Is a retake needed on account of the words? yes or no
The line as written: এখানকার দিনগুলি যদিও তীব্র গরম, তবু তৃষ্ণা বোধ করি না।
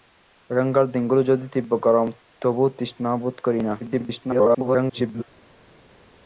yes